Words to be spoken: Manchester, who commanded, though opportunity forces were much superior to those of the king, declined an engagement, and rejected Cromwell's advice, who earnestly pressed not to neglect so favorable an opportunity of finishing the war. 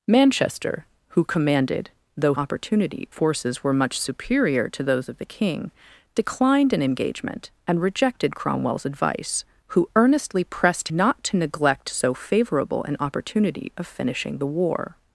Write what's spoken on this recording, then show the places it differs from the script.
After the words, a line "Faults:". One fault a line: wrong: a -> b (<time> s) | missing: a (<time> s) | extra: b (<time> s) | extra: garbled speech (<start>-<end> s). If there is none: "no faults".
Manchester, who commanded, though opportunity forces were much superior to those of the king, declined an engagement, and rejected Cromwell's advice, who earnestly pressed not to neglect so favorable an opportunity of finishing the war.
Faults:
no faults